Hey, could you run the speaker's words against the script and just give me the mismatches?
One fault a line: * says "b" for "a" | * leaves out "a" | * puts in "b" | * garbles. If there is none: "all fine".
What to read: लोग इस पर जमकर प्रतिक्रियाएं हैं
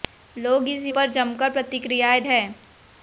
all fine